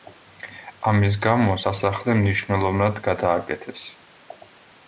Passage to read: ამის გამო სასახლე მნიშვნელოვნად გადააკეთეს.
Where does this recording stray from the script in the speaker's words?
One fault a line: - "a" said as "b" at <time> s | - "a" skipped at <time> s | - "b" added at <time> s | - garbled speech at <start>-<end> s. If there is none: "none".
none